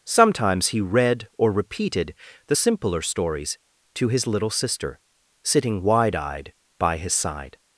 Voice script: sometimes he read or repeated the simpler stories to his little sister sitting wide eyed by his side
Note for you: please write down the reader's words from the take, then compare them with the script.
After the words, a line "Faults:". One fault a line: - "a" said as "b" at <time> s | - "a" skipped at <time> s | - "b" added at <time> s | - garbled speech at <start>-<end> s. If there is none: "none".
sometimes he read or repeated the simpler stories to his little sister sitting wide eyed by his side
Faults:
none